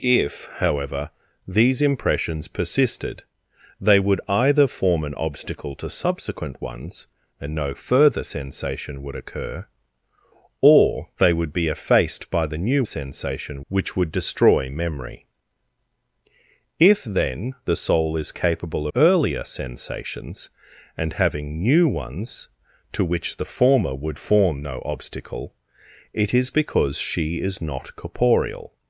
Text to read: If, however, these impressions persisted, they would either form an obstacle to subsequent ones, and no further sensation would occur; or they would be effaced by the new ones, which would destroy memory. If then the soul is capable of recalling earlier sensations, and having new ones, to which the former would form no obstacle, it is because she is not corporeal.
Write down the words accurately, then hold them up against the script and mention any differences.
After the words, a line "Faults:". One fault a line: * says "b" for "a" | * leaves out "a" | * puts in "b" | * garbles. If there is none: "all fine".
If, however, these impressions persisted, they would either form an obstacle to subsequent ones, and no further sensation would occur; or they would be effaced by the new sensation, which would destroy memory. If then the soul is capable earlier sensations, and having new ones, to which the former would form no obstacle, it is because she is not corporeal.
Faults:
* says "sensation" for "ones"
* leaves out "of recalling"